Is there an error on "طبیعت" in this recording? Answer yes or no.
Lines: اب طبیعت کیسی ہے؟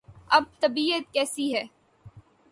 no